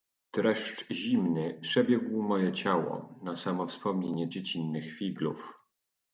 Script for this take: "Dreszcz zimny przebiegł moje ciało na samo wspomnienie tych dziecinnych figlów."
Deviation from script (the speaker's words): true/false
true